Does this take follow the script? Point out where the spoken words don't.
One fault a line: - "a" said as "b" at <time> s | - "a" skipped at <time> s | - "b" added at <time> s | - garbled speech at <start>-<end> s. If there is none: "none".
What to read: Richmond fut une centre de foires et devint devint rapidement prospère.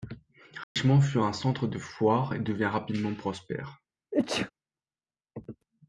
- "une" said as "un" at 1.2 s
- "devint" skipped at 2.7 s